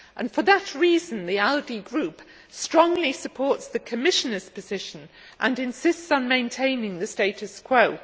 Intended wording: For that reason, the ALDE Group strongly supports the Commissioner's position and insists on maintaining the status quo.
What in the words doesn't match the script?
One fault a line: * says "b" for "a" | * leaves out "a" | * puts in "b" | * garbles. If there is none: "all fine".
all fine